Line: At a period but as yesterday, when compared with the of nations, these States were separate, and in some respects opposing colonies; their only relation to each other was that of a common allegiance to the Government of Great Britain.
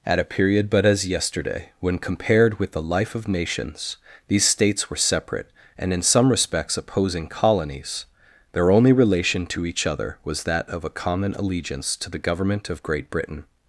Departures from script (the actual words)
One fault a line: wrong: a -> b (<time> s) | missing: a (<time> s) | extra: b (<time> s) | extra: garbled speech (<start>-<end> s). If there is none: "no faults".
extra: life (2.8 s)